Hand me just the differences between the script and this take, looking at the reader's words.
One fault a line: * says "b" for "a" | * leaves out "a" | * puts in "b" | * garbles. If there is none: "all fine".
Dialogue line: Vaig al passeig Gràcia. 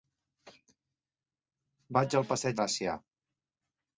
all fine